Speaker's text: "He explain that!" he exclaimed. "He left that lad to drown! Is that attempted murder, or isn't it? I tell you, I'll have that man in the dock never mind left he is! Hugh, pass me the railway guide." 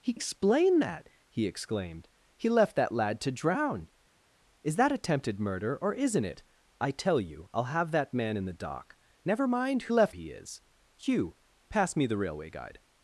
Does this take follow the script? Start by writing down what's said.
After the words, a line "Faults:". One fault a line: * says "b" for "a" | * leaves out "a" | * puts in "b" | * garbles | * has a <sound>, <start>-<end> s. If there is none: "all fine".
"He explain that!" he exclaimed. "He left that lad to drown! Is that attempted murder, or isn't it? I tell you, I'll have that man in the dock never mind left he is! Hugh, pass me the railway guide."
Faults:
all fine